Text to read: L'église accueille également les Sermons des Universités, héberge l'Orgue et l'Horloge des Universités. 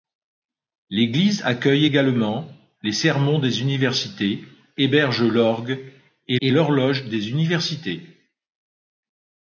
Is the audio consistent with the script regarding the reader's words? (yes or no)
no